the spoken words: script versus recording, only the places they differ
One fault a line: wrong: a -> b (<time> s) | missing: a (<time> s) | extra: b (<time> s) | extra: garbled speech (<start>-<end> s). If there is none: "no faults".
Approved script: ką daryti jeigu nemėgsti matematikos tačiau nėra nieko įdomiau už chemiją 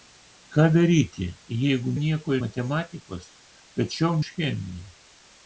wrong: nemėgsti -> nieko (2.0 s)
missing: nėra nieko įdomiau (4.1 s)